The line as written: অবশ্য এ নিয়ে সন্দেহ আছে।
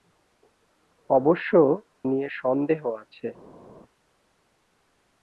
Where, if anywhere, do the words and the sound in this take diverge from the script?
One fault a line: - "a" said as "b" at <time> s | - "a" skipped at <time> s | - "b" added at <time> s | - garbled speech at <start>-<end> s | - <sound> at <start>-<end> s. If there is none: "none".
- "এ" skipped at 1.5 s